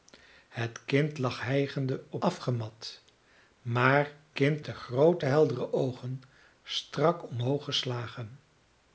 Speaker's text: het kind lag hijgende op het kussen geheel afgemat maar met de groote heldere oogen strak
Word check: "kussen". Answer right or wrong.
wrong